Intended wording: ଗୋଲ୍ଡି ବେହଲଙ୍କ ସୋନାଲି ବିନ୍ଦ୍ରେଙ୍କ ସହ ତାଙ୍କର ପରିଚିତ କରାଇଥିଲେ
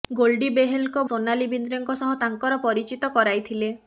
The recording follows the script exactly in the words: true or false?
true